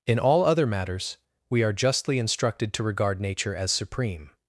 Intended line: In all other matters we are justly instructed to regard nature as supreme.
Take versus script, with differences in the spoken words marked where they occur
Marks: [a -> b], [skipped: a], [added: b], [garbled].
In all other matters we are justly instructed to regard nature as supreme.